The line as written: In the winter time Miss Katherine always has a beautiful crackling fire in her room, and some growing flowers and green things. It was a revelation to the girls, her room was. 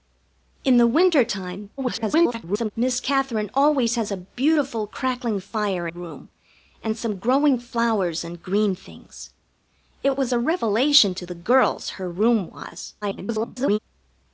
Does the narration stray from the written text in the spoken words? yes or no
yes